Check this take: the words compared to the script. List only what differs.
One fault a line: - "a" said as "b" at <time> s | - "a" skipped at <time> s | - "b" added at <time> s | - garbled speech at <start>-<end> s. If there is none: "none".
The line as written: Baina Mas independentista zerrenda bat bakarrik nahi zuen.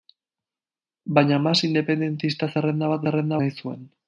- "bakarrik" said as "zerrenda" at 3.0 s